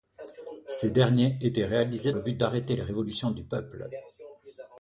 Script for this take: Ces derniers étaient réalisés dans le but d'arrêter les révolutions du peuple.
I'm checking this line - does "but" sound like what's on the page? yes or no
yes